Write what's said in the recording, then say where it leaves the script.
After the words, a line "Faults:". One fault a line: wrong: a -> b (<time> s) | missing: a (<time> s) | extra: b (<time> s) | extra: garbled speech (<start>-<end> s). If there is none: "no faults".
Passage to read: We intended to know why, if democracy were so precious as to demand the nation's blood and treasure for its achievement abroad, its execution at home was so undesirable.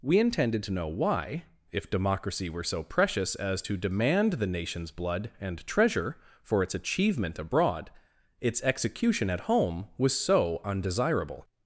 We intended to know why, if democracy were so precious as to demand the nation's blood and treasure for its achievement abroad, its execution at home was so undesirable.
Faults:
no faults